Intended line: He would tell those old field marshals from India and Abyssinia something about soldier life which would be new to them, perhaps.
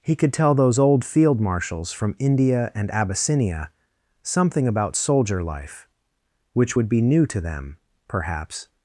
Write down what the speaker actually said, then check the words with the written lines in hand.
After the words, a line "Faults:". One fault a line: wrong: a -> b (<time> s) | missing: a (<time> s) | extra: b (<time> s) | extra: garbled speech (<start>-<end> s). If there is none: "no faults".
He could tell those old field marshals from India and Abyssinia something about soldier life which would be new to them, perhaps.
Faults:
wrong: would -> could (0.1 s)